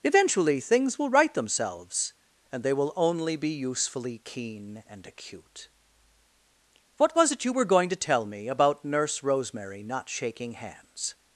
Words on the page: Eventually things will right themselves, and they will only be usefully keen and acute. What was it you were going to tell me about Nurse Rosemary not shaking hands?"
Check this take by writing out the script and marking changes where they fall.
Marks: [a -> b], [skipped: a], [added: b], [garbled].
Eventually things will right themselves, and they will only be usefully keen and acute. What was it you were going to tell me about Nurse Rosemary not shaking hands?"